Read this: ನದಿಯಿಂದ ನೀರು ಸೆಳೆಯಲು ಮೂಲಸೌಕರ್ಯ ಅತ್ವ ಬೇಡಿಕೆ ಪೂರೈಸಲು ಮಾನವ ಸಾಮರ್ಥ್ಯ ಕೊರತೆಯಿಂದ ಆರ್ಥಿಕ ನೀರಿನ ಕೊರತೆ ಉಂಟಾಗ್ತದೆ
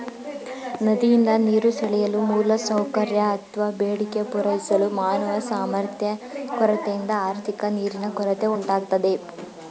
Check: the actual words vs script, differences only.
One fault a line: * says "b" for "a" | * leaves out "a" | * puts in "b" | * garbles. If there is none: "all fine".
all fine